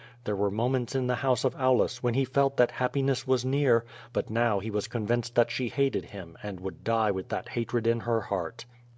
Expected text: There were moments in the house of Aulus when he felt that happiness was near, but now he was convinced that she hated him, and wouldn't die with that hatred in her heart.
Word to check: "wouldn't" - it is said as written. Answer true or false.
false